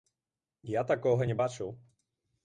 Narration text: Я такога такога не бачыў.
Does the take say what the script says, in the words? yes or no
no